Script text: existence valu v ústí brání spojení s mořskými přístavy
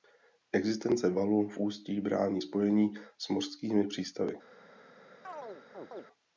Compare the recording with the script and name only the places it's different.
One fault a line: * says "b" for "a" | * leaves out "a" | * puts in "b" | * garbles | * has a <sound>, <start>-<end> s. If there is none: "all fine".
* has a chirp, 5.2-6.1 s